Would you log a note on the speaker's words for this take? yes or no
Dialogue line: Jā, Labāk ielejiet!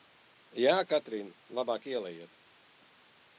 yes